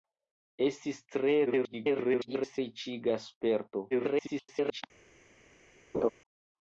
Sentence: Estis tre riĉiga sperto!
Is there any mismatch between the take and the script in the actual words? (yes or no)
yes